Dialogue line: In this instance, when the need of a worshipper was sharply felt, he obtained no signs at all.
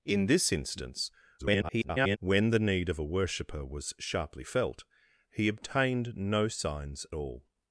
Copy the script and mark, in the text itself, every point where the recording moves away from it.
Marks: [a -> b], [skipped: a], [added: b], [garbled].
In this instance, [garbled] when the need of a worshipper was sharply felt, he obtained no signs [skipped: at] all.